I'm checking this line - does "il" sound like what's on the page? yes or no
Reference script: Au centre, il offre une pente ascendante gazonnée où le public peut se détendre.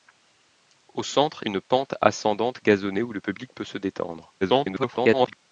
no